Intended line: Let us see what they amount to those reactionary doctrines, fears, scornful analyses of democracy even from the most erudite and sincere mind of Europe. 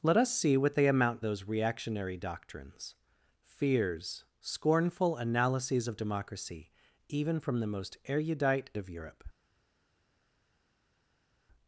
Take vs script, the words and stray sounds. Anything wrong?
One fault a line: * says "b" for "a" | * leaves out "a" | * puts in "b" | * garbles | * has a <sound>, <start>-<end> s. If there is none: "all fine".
* leaves out "to"
* leaves out "and sincere mind"